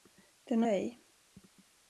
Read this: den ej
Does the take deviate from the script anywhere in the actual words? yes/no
no